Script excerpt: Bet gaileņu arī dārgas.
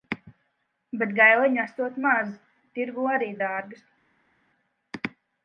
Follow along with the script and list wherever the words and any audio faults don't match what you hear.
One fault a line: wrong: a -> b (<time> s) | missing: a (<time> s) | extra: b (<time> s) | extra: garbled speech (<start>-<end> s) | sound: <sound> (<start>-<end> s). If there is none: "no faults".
extra: esot maz Tirgū (1.6 s)